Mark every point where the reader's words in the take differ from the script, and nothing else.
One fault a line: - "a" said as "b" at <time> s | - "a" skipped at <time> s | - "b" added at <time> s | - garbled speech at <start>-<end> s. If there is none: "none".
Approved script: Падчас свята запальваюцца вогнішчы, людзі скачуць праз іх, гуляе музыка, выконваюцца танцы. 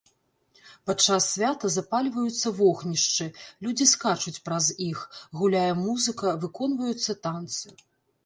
none